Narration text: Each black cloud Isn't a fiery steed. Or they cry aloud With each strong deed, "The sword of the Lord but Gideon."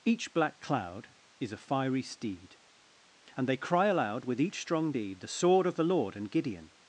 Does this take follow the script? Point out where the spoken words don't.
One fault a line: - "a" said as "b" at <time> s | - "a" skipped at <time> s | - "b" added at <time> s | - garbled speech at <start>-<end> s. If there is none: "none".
- "Isn't" said as "Is" at 1.4 s
- "Or" said as "And" at 3.4 s
- "but" said as "and" at 6.2 s